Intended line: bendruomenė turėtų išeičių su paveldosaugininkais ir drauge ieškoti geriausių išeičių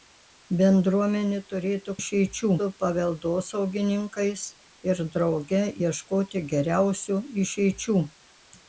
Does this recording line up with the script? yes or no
yes